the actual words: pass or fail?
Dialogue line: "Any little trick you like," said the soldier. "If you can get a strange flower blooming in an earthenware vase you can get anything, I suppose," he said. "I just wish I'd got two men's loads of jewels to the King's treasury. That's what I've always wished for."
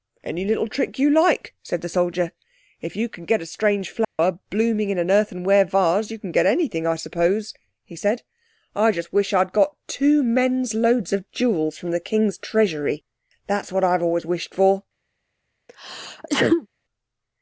fail